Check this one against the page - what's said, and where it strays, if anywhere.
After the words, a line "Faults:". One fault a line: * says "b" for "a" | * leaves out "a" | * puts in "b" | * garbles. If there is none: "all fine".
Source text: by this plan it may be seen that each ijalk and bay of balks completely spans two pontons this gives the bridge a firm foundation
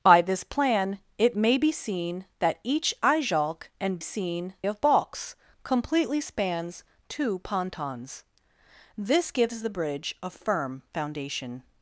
by this plan it may be seen that each ijalk and seen of balks completely spans two pontons this gives the bridge a firm foundation
Faults:
* says "seen" for "bay"